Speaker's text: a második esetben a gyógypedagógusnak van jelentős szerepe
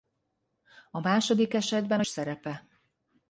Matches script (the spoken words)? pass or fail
fail